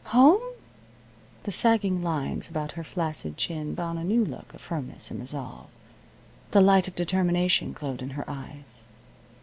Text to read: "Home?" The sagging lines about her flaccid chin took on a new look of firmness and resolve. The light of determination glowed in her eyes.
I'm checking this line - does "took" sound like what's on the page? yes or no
no